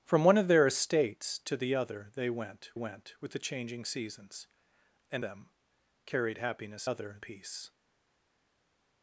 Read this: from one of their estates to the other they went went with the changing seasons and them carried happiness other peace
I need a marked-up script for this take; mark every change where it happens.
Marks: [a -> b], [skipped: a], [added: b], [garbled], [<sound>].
from one of their estates to the other they went went with the changing seasons and them carried happiness other peace